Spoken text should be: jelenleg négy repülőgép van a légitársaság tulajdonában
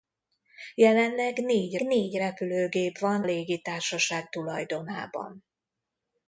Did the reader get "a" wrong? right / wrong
wrong